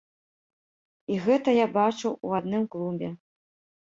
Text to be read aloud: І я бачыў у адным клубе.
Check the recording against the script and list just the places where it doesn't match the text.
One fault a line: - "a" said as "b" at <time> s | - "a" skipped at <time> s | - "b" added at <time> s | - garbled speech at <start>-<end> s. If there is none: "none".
- "гэта" added at 1.2 s